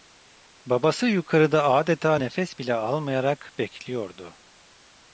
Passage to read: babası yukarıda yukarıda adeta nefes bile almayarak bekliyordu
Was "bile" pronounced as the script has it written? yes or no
yes